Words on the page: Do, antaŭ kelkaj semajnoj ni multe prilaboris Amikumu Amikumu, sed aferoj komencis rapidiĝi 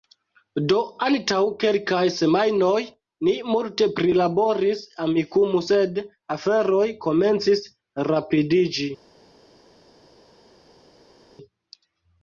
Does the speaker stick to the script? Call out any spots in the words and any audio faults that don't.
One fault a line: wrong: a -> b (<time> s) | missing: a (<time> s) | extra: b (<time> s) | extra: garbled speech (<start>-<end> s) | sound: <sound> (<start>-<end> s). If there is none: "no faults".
missing: Amikumu (5.6 s)